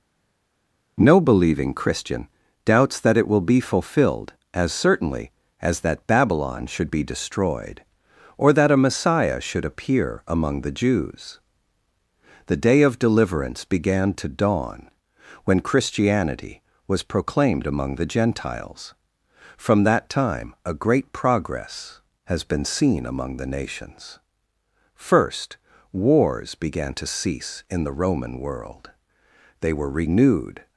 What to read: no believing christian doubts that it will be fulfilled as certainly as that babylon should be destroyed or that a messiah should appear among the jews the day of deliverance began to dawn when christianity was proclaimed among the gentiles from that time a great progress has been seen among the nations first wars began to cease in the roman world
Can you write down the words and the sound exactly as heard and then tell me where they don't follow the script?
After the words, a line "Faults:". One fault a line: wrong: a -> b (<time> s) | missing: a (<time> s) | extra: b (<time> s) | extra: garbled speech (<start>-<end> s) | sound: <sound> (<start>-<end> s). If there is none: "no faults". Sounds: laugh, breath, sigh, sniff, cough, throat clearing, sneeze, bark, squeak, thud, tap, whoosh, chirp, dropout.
no believing christian doubts that it will be fulfilled as certainly as that babylon should be destroyed or that a messiah should appear among the jews the day of deliverance began to dawn when christianity was proclaimed among the gentiles from that time a great progress has been seen among the nations first wars began to cease in the roman world they were renewed
Faults:
extra: they were renewed (29.6 s)